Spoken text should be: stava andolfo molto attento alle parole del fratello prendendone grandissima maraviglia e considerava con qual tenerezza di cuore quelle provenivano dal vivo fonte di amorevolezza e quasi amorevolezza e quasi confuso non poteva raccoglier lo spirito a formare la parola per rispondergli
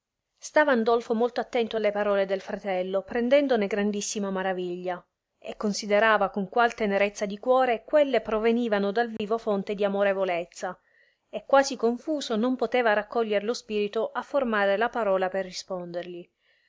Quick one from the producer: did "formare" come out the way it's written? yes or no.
yes